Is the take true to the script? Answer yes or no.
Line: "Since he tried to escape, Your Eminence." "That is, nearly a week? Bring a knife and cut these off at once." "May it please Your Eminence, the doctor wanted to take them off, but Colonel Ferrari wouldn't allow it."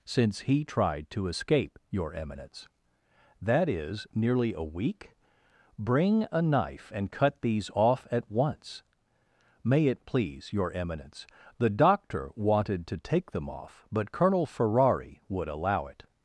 no